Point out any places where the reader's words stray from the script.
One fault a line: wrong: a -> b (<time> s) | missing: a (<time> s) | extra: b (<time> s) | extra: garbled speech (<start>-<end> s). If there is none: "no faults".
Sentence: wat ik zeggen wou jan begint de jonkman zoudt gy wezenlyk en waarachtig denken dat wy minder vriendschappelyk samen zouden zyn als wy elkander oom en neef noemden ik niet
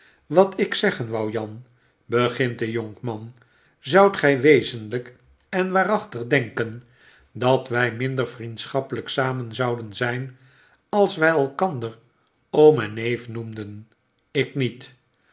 no faults